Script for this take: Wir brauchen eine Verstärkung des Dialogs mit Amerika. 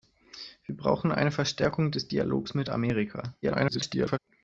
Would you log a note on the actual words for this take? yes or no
yes